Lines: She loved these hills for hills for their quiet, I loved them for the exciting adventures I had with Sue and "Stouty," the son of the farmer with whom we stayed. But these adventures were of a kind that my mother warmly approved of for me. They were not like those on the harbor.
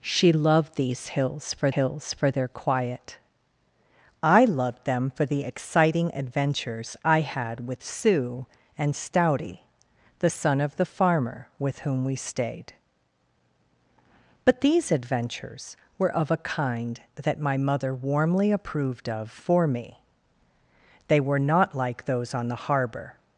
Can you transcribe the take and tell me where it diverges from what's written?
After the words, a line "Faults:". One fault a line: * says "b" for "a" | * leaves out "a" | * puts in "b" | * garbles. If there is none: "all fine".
She loved these hills for hills for their quiet, I loved them for the exciting adventures I had with Sue and "Stouty," the son of the farmer with whom we stayed. But these adventures were of a kind that my mother warmly approved of for me. They were not like those on the harbor.
Faults:
all fine